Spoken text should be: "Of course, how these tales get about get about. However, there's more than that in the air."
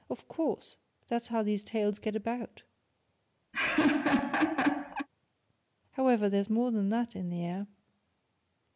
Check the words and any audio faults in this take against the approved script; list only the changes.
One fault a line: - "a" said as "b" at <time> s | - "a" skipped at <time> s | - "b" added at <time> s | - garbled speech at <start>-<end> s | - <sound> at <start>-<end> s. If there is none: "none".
- "that's" added at 1.1 s
- "get about" skipped at 2.6 s
- laugh at 3.5-5.1 s